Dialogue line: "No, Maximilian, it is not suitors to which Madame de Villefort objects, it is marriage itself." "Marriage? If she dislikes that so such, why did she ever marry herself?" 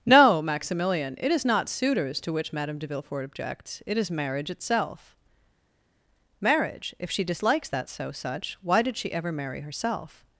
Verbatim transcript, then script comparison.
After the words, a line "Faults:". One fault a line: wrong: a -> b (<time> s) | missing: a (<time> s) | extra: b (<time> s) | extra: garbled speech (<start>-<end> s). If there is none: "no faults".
"No, Maximilian, it is not suitors to which Madame de Villefort objects, it is marriage itself." "Marriage? If she dislikes that so such, why did she ever marry herself?"
Faults:
no faults